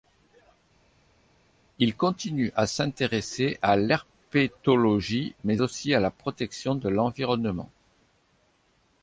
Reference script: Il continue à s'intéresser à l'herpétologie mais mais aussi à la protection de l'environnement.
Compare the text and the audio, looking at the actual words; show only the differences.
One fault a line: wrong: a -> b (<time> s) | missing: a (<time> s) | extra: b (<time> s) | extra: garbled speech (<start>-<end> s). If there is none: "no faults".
missing: mais (5.6 s)